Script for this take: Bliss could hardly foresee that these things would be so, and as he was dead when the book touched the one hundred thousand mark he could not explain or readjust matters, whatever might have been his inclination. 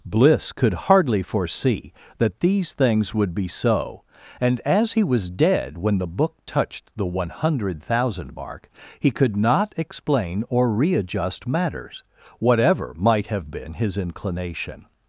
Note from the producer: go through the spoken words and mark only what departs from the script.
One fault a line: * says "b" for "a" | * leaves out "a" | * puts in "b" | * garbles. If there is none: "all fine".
all fine